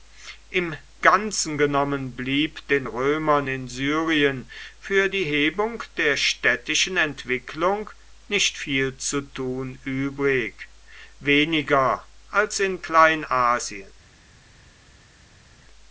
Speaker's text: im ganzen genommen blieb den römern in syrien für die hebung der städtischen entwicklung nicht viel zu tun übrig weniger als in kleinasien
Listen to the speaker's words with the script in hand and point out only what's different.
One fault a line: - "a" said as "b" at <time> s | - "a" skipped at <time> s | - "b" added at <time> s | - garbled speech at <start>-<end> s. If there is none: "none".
none